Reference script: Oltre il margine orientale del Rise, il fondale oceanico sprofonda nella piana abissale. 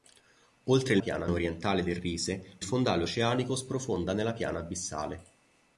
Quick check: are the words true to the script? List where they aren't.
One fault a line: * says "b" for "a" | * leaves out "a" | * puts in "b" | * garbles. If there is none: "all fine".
* says "piana" for "margine"
* leaves out "il"